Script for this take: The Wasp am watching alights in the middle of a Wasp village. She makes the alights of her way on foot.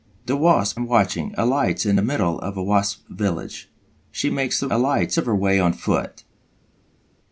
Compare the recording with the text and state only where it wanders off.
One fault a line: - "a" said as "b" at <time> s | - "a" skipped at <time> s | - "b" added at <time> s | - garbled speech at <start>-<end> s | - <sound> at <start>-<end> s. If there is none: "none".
none